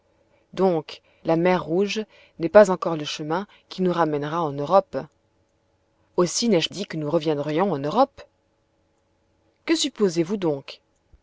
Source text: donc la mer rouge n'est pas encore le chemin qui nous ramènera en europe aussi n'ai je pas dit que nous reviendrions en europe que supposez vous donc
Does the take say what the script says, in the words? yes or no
no